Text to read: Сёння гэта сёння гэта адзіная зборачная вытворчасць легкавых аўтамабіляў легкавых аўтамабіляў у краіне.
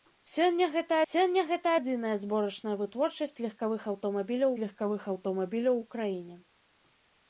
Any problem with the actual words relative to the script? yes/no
no